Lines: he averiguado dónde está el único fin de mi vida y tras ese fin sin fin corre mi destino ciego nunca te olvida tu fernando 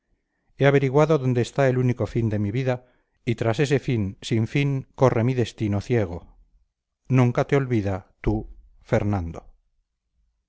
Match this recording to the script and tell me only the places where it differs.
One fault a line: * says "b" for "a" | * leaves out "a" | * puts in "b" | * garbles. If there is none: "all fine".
all fine